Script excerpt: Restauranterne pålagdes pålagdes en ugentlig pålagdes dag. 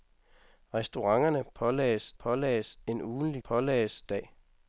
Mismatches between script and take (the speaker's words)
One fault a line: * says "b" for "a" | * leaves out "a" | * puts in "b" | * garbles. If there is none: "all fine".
all fine